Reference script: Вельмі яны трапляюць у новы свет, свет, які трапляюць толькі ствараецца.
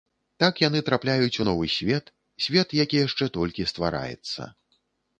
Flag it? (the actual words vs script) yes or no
yes